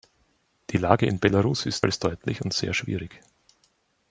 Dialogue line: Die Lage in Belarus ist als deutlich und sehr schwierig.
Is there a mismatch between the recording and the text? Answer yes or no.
no